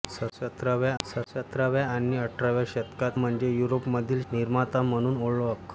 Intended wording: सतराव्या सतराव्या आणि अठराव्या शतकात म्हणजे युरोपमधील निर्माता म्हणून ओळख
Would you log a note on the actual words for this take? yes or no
no